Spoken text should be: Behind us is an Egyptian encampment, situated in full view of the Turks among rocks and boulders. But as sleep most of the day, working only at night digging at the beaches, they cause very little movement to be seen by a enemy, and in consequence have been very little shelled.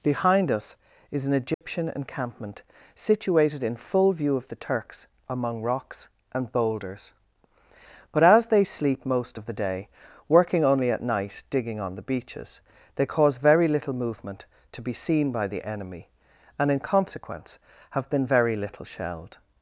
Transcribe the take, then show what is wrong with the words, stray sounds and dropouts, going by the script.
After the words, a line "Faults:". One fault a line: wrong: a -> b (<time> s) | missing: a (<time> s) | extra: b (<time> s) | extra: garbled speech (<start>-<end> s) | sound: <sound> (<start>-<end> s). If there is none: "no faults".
Behind us is an Egyptian encampment, situated in full view of the Turks among rocks and boulders. But as they sleep most of the day, working only at night digging on the beaches, they cause very little movement to be seen by the enemy, and in consequence have been very little shelled.
Faults:
sound: dropout (1.5-1.6 s)
extra: they (8.5 s)
wrong: at -> on (11.8 s)
wrong: a -> the (15.5 s)